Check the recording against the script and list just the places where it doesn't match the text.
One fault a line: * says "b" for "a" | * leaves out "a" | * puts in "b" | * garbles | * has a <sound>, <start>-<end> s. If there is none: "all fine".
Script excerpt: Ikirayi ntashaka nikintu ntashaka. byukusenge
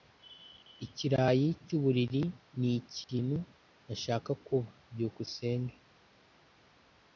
* says "cyuburiri" for "ntashaka"
* puts in "kuba"